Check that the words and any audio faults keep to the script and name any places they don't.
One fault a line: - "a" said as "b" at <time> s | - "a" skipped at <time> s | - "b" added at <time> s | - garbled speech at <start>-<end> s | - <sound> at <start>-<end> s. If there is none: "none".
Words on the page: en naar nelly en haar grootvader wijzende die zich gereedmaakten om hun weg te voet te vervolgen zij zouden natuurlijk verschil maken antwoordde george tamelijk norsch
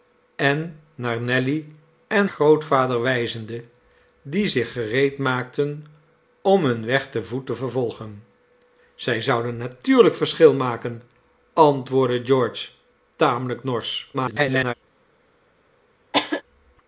- "haar" skipped at 2.3 s
- garbled speech at 14.1-14.7 s
- cough at 16.1-16.4 s